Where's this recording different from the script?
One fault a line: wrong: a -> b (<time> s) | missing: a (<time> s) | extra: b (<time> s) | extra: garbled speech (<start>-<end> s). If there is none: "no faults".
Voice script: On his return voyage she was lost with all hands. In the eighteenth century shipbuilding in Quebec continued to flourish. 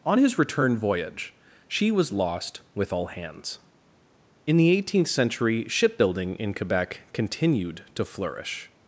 no faults